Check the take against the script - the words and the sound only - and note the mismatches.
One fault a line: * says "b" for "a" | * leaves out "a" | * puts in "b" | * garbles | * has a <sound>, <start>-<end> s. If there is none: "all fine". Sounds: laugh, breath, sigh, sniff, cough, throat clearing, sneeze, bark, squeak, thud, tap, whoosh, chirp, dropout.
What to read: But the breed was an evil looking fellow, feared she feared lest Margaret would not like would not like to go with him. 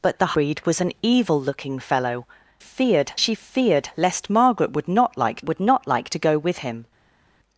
all fine